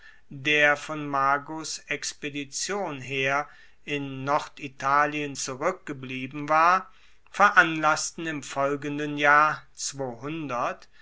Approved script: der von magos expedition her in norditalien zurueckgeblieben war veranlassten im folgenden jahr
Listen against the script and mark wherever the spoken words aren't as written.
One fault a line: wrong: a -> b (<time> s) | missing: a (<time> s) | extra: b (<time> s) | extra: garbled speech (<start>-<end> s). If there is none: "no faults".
no faults